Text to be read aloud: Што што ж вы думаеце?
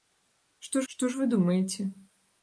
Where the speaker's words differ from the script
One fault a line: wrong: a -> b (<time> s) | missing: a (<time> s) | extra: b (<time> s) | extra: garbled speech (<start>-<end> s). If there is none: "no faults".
no faults